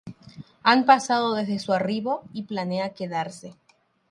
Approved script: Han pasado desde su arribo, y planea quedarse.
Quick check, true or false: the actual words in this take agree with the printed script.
true